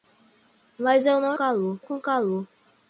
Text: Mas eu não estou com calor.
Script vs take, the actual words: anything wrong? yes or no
yes